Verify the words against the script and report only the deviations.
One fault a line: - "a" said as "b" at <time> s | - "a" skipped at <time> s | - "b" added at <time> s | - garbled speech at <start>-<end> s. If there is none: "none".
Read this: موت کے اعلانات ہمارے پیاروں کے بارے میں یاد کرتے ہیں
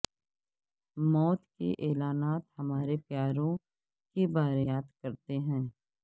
- "میں" skipped at 4.7 s